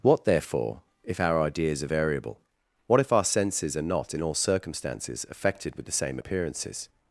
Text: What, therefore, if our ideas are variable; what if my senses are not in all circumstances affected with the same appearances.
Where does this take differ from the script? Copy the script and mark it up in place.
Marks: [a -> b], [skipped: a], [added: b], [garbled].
What, therefore, if our ideas are variable; what if [my -> our] senses are not in all circumstances affected with the same appearances.